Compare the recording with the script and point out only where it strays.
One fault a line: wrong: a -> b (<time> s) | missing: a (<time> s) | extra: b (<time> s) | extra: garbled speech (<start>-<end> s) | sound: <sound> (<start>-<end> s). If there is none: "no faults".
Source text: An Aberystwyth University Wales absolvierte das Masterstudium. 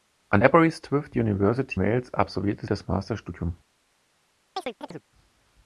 sound: chirp (4.6-5.0 s)